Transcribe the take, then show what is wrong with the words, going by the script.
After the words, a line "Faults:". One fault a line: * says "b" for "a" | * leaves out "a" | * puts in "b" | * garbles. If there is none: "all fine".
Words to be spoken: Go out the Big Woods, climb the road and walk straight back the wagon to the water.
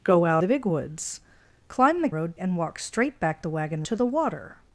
Go out the Big Woods, climb the road and walk straight back the wagon to the water.
Faults:
all fine